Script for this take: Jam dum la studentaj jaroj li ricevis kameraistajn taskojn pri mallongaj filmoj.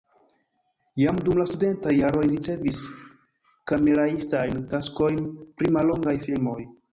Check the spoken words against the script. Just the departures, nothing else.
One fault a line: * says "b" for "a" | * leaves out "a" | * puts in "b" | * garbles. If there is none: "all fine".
all fine